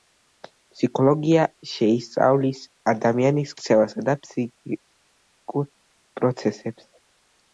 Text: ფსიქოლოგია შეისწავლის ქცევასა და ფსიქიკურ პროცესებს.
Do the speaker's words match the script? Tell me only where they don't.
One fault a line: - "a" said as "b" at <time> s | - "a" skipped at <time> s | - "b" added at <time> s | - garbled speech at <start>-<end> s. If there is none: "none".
- "ადამიანის" added at 2.9 s